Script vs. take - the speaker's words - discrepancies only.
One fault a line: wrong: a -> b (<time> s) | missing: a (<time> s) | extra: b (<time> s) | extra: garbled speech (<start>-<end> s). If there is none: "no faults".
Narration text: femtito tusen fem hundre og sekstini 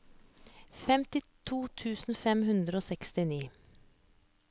no faults